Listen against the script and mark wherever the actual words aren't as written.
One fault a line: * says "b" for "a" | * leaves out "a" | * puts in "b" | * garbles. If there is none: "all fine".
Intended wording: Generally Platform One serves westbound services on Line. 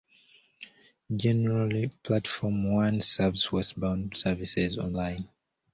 all fine